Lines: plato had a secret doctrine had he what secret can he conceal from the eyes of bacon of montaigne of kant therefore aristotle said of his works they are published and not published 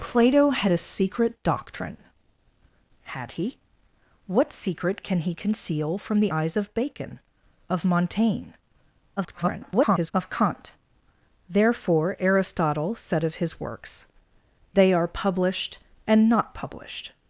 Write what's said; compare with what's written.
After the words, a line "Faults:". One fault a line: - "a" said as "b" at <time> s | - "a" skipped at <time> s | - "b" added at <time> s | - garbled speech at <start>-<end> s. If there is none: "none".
plato had a secret doctrine had he what secret can he conceal from the eyes of bacon of montaigne [garbled] of kant therefore aristotle said of his works they are published and not published
Faults:
- garbled speech at 9.2-10.1 s